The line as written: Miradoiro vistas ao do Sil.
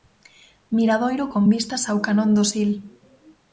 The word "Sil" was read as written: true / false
true